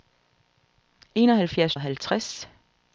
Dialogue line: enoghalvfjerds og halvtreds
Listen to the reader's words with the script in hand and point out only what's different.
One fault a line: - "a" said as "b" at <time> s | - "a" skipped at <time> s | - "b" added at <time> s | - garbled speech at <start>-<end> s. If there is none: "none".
none